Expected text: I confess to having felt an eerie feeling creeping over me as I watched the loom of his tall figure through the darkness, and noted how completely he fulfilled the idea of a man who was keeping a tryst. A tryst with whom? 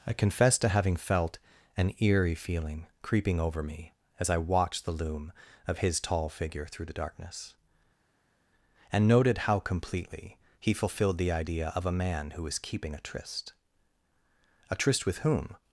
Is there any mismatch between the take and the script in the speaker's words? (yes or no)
no